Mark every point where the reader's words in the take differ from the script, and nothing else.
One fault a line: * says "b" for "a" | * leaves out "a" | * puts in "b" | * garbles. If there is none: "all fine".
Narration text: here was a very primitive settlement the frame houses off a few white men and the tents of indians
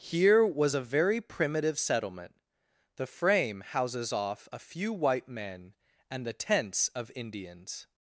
all fine